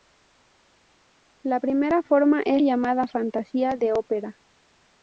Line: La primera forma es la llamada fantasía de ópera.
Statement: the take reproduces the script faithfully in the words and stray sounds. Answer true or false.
false